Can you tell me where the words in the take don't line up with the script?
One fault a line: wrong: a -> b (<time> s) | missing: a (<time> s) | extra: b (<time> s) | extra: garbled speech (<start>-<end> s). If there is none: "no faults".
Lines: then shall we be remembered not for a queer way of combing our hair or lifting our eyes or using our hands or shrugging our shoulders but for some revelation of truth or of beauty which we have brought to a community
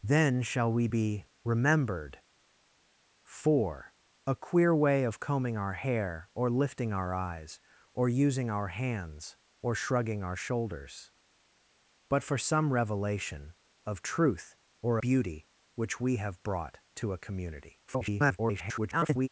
missing: not (2.2 s)
missing: of (15.0 s)
extra: garbled speech (17.9-19.3 s)